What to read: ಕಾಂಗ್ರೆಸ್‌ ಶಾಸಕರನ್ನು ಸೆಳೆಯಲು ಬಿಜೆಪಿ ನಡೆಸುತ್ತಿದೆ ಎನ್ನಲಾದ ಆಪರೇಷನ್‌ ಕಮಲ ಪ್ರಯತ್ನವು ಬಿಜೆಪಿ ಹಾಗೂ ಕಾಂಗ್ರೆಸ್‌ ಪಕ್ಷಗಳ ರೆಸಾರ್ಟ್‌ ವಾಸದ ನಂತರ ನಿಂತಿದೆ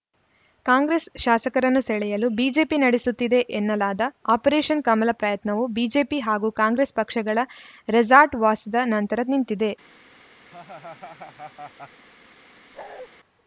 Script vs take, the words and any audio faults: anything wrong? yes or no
yes